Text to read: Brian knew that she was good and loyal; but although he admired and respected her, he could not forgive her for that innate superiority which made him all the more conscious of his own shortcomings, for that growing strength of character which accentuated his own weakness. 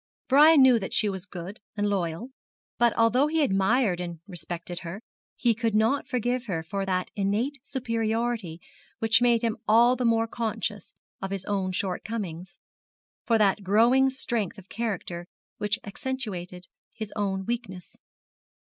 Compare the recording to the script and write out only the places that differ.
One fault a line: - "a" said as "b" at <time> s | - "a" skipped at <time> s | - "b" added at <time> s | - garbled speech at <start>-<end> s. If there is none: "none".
none